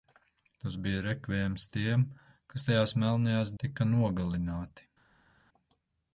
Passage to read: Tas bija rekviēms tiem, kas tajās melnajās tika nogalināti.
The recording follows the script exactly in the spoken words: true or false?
true